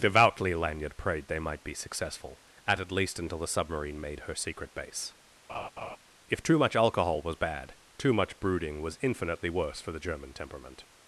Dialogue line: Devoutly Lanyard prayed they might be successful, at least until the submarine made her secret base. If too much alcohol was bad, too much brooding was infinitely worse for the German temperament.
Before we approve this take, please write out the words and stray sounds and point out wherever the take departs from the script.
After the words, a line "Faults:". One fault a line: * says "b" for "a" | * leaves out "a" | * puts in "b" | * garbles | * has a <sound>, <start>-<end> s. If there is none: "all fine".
Devoutly Lanyard prayed they might be successful, at at least until the submarine made her secret base. If too much alcohol was bad, too much brooding was infinitely worse for the German temperament.
Faults:
* puts in "at"
* has a laugh, 5.5-6.0 s